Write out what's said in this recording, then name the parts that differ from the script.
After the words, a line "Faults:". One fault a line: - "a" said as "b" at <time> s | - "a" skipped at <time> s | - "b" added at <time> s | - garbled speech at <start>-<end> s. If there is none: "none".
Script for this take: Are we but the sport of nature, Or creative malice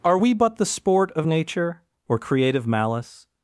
Are we but the sport of nature, Or creative malice
Faults:
none